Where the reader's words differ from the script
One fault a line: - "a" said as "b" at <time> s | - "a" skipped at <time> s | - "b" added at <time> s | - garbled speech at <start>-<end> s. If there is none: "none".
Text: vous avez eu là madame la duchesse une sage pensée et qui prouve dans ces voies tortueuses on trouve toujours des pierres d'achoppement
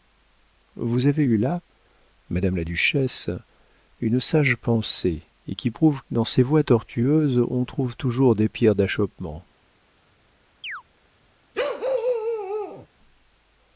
none